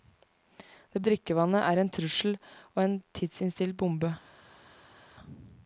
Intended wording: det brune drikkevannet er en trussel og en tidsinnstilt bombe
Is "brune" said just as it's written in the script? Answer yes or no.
no